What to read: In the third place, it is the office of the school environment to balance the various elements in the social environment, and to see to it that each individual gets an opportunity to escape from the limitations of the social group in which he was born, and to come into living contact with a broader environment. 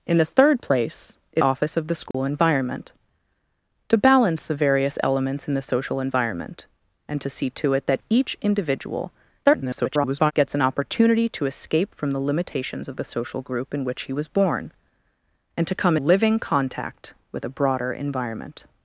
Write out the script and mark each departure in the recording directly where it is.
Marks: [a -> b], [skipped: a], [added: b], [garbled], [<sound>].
In the third place, it [skipped: is the] office of the school [dropout] environment to balance the various elements in the social environment, and to see to it that each individual [garbled] gets an opportunity to escape from the limitations of the social group in which he was born, and to come [skipped: into] living contact with a broader environment.